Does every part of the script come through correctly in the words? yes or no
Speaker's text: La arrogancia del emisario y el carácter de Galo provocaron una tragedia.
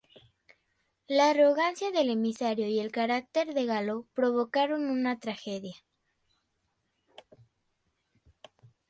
yes